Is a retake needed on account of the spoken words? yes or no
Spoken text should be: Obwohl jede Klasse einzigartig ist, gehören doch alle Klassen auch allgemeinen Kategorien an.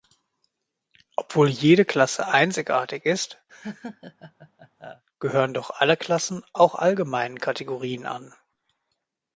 no